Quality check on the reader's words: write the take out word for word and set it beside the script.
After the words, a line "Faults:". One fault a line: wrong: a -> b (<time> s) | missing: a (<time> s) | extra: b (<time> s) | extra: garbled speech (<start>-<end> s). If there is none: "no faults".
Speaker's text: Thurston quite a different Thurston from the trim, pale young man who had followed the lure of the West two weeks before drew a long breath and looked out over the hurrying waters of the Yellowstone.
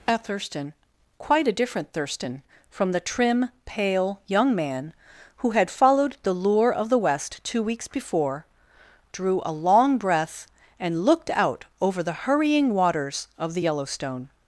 a Thurston quite a different Thurston from the trim, pale young man who had followed the lure of the West two weeks before drew a long breath and looked out over the hurrying waters of the Yellowstone.
Faults:
extra: a (0.1 s)